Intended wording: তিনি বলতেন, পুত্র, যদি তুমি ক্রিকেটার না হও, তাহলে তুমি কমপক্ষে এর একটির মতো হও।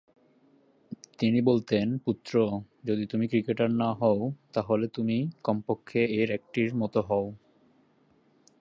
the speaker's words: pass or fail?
pass